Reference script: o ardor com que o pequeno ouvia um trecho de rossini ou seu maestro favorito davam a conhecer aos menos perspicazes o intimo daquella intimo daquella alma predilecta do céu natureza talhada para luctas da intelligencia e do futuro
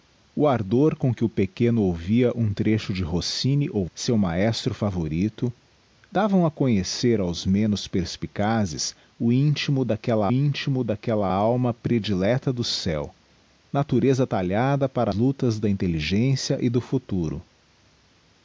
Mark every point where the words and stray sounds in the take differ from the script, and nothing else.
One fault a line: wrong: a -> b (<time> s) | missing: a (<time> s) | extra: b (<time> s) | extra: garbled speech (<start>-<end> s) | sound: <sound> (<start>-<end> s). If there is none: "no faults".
no faults